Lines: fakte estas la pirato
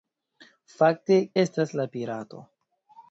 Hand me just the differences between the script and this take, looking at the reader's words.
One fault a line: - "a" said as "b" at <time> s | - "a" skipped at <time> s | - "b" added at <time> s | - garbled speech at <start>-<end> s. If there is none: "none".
none